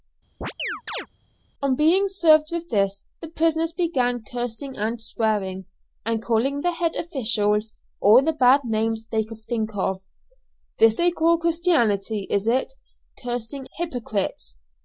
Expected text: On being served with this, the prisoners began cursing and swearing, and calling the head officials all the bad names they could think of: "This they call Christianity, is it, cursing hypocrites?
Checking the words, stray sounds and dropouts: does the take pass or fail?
fail